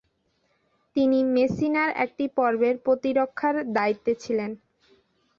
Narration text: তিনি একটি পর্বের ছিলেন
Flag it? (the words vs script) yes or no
yes